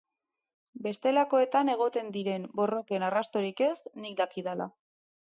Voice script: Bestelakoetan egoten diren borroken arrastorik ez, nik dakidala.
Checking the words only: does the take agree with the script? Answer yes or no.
yes